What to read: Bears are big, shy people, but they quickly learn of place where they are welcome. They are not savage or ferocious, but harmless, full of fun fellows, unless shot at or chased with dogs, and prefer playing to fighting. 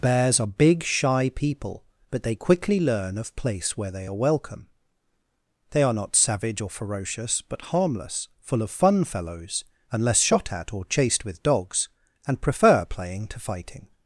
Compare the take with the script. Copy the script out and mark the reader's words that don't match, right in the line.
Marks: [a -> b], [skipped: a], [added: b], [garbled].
Bears are big, shy people, but they quickly learn of place where they are welcome. They are not savage or ferocious, but harmless, full of fun fellows, unless shot at or chased with dogs, and prefer playing to fighting.